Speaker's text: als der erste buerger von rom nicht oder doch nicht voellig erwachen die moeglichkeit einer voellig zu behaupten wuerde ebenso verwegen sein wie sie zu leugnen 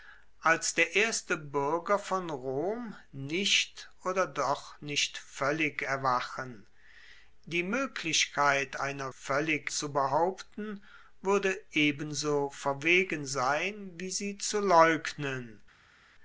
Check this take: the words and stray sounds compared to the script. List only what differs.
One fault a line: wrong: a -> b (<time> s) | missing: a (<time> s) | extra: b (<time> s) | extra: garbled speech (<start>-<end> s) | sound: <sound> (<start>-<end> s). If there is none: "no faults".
no faults